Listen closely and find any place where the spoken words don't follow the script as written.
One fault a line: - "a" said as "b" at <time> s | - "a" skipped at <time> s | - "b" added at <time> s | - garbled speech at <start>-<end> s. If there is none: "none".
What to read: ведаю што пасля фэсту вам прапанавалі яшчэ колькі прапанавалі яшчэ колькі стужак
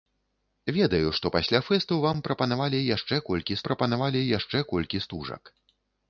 none